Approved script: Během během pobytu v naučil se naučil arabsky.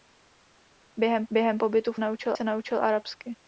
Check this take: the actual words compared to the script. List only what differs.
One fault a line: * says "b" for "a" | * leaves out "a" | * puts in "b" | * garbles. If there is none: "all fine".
all fine